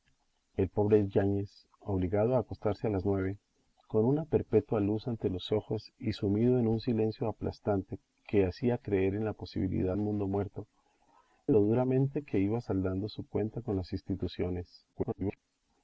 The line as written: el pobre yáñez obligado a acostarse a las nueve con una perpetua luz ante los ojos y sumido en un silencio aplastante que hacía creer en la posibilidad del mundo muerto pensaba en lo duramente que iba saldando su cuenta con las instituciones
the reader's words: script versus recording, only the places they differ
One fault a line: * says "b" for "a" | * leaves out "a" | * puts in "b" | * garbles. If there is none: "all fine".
* leaves out "del"
* leaves out "pensaba"
* garbles